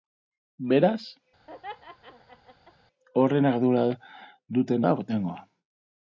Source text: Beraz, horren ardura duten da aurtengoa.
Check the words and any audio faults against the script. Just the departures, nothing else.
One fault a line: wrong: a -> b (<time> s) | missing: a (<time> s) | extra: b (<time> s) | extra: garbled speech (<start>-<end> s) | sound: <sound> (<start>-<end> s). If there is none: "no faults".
sound: laugh (1.5-2.7 s)